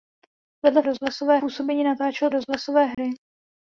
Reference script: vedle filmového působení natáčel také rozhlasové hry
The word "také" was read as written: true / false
false